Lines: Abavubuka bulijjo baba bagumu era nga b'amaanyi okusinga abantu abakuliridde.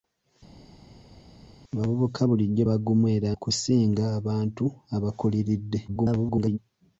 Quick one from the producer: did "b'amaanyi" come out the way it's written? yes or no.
no